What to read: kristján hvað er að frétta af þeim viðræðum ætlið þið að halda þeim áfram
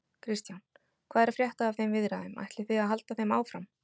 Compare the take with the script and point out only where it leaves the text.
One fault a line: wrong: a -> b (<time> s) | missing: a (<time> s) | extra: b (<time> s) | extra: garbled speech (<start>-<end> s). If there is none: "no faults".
no faults